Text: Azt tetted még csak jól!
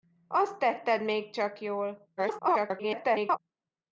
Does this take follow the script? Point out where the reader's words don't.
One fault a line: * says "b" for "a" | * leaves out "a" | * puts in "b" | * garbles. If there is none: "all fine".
* garbles